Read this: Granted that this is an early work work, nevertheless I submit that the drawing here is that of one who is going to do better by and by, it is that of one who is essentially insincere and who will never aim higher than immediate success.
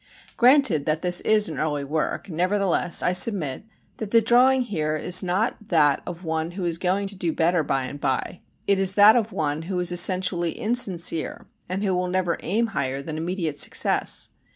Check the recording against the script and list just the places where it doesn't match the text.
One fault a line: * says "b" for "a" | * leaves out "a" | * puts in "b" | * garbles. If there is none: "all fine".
* leaves out "work"
* puts in "not"